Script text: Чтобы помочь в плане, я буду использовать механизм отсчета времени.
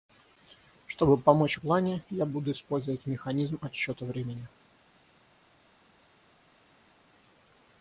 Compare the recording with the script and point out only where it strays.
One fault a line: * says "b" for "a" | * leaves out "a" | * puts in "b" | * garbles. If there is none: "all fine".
all fine